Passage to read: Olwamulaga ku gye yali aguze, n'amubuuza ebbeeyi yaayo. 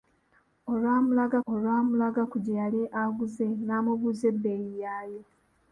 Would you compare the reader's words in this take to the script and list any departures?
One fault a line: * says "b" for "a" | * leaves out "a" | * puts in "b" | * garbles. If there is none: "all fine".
* puts in "olwamulaga"